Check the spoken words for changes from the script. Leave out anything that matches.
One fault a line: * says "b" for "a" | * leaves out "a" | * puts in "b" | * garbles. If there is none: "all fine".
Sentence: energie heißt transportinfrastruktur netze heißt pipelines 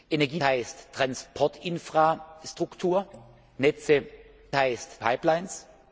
all fine